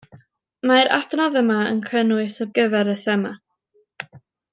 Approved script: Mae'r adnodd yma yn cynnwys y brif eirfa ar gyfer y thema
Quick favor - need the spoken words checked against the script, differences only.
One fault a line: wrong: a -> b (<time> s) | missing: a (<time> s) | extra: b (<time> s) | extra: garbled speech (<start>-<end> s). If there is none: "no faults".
missing: brif eirfa ar (2.5 s)